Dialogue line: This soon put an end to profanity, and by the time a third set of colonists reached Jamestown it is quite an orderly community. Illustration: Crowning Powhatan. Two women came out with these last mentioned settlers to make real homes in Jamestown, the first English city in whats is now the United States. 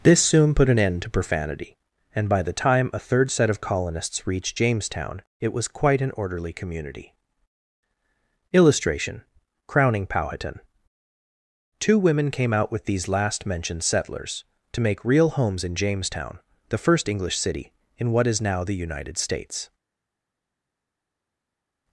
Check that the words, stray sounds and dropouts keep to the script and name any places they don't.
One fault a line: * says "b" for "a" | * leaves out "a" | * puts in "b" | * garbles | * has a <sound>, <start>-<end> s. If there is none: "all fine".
* says "was" for "is"
* says "what" for "whats"